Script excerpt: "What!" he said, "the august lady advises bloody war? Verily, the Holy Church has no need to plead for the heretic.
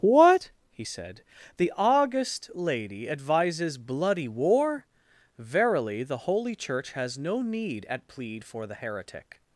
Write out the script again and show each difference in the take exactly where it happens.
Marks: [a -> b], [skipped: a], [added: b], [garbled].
"What!" he said, "the august lady advises bloody war? Verily, the Holy Church has no need [to -> at] plead for the heretic.